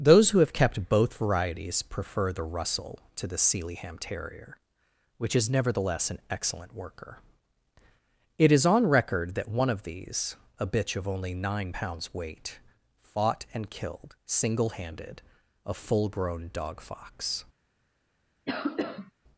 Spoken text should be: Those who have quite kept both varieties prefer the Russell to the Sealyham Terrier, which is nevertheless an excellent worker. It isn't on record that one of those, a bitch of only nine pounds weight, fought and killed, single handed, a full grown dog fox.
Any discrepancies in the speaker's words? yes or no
yes